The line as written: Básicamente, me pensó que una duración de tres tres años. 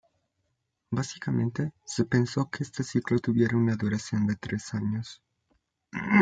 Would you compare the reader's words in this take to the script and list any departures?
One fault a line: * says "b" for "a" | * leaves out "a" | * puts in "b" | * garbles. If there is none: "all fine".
* says "se" for "me"
* puts in "este ciclo tuviera"
* leaves out "tres"